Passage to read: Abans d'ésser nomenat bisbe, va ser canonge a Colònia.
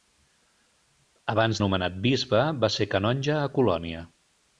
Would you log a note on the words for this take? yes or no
yes